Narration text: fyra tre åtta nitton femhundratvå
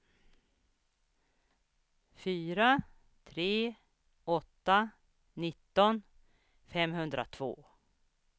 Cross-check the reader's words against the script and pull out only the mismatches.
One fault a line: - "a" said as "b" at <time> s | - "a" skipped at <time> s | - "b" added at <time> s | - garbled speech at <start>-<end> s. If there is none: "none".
none